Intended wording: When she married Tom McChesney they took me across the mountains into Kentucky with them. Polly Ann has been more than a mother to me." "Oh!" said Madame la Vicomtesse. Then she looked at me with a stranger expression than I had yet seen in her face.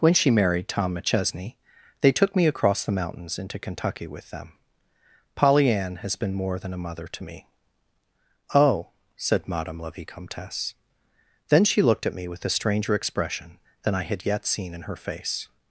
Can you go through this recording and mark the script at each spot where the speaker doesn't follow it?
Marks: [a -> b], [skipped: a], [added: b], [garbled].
When she married Tom McChesney they took me across the mountains into Kentucky with them. Polly Ann has been more than a mother to me." "Oh!" said Madame la Vicomtesse. Then she looked at me with a stranger expression than I had yet seen in her face.